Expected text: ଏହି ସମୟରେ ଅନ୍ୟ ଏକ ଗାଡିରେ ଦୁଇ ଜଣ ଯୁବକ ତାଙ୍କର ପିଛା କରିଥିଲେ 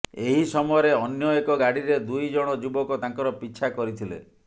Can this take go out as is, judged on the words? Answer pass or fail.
pass